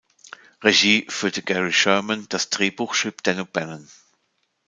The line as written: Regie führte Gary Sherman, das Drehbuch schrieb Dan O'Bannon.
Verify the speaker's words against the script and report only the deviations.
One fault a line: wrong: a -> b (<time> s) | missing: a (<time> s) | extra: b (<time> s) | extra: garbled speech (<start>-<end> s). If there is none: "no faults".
no faults